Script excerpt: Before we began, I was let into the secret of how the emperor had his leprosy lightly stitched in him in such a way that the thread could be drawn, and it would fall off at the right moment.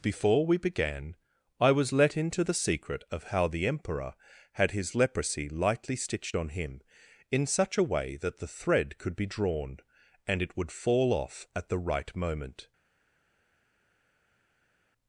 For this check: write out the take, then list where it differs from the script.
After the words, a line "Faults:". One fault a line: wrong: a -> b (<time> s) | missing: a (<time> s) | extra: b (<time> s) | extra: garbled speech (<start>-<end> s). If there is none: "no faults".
Before we began, I was let into the secret of how the emperor had his leprosy lightly stitched on him in such a way that the thread could be drawn, and it would fall off at the right moment.
Faults:
wrong: in -> on (6.3 s)